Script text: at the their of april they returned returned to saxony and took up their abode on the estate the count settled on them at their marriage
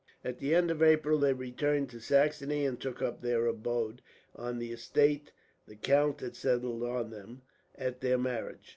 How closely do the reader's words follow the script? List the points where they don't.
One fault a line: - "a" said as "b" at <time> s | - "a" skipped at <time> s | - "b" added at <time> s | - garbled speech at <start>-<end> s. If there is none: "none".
- "their" said as "end" at 0.6 s
- "returned" skipped at 1.9 s
- "had" added at 6.2 s